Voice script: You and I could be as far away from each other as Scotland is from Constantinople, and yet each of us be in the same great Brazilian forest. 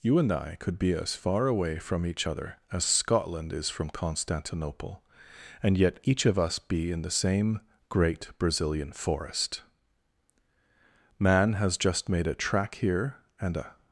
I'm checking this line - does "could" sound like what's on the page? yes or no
yes